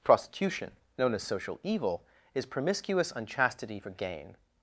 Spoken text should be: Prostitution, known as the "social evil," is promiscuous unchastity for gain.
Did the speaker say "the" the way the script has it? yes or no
no